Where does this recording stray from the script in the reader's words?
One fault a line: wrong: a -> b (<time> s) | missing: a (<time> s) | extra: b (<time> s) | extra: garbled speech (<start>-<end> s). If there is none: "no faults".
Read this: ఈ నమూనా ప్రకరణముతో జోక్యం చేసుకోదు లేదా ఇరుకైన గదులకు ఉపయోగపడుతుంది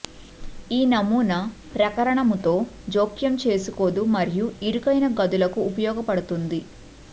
wrong: లేదా -> మరియు (4.1 s)